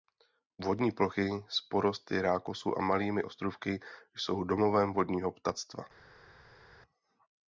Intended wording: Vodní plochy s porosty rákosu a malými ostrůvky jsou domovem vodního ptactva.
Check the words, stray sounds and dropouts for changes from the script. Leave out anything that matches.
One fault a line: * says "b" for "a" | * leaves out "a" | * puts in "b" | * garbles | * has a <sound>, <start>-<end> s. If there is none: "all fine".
all fine